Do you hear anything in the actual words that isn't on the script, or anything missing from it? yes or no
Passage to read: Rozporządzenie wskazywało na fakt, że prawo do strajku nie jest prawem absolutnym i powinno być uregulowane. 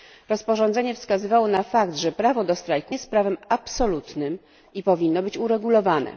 yes